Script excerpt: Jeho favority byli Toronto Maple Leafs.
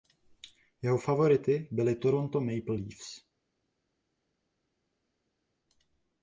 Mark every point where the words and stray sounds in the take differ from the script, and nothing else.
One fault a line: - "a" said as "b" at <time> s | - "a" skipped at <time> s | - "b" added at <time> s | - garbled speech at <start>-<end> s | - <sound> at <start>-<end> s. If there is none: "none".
none